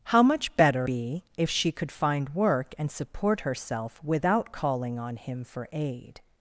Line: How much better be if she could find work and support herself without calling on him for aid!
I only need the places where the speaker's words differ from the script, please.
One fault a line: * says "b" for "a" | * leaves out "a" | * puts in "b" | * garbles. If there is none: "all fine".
all fine